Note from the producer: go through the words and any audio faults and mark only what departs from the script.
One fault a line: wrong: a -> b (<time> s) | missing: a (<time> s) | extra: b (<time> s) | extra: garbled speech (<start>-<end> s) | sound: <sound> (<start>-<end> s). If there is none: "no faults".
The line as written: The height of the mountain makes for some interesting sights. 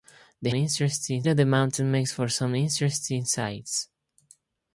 wrong: height -> interesting (0.5 s)